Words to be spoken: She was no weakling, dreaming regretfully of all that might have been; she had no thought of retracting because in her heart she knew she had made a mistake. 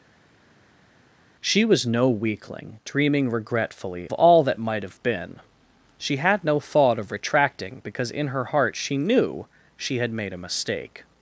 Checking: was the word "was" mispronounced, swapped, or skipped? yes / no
no